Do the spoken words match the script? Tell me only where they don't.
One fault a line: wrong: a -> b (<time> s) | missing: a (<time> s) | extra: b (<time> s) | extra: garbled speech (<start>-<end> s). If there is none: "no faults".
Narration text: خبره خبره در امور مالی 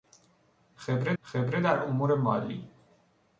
no faults